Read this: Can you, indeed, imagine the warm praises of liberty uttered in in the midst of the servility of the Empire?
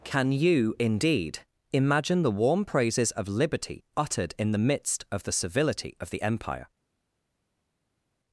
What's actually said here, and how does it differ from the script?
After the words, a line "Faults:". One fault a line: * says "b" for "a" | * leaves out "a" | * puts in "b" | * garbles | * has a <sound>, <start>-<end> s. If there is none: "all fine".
Can you, indeed, imagine the warm praises of liberty uttered in the midst of the servility of the Empire?
Faults:
* leaves out "in"